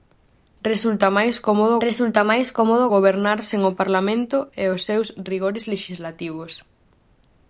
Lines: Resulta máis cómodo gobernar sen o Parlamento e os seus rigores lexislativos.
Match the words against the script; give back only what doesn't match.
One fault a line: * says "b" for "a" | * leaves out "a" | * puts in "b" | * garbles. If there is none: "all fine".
* puts in "resulta máis cómodo"